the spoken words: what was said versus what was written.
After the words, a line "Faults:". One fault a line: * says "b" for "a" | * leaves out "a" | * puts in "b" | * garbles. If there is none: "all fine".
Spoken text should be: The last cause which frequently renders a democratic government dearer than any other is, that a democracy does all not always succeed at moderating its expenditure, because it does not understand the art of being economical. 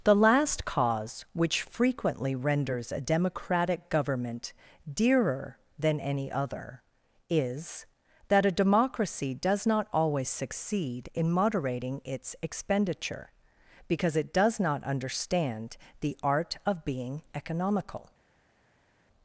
The last cause which frequently renders a democratic government dearer than any other is, that a democracy does not always succeed in moderating its expenditure, because it does not understand the art of being economical.
Faults:
* leaves out "all"
* says "in" for "at"